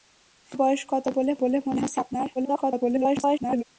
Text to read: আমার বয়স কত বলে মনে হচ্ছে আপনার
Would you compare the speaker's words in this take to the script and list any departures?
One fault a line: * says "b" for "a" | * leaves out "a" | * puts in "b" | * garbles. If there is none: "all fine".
* puts in "বলে"
* garbles